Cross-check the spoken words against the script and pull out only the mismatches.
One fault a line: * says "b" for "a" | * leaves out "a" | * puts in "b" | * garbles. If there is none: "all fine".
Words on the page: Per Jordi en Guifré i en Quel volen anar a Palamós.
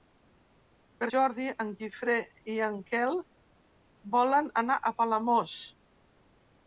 all fine